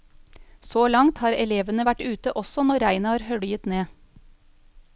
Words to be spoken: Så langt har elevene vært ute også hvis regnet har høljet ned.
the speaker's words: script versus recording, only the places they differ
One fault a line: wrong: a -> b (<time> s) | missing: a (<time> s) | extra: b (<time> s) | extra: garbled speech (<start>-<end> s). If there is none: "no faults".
wrong: hvis -> når (2.7 s)